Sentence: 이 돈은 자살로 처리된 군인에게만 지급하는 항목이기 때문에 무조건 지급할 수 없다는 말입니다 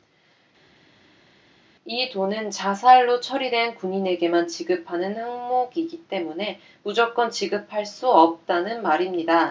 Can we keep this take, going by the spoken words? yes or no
yes